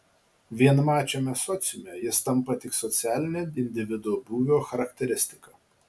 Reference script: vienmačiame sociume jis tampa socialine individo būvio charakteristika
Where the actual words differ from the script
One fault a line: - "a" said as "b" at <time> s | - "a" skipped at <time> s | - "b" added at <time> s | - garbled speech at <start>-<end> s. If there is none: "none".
- "tik" added at 2.7 s